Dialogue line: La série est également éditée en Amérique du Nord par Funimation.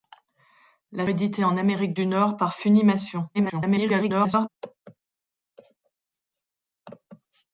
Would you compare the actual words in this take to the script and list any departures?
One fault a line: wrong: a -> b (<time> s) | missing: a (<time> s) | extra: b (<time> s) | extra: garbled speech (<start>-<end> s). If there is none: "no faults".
missing: série est également (1.1 s)
extra: garbled speech (3.3-4.5 s)